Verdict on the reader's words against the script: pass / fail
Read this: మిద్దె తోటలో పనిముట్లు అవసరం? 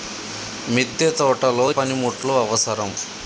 pass